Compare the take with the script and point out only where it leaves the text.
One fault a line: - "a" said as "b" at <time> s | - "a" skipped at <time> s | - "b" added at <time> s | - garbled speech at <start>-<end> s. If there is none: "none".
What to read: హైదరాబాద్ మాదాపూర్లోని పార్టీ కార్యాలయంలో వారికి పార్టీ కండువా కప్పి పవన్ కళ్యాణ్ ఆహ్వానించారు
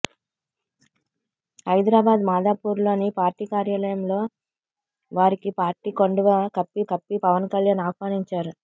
- "కప్పి" added at 6.9 s